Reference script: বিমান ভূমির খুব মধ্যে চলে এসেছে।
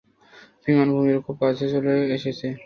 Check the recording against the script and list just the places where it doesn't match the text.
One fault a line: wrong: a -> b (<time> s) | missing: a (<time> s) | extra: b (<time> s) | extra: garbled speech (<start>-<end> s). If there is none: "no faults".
wrong: মধ্যে -> কাছে (1.4 s)